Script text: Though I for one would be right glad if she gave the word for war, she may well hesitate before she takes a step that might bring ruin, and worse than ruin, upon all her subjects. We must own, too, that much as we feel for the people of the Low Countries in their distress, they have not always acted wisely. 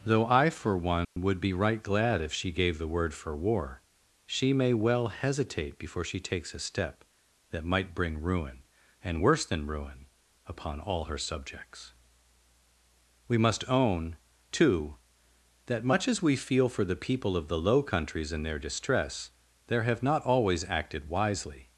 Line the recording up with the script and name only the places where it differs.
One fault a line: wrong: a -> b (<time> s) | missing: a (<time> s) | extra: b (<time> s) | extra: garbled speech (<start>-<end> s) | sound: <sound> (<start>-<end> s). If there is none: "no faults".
sound: dropout (1.0-1.2 s)
wrong: they -> there (19.7 s)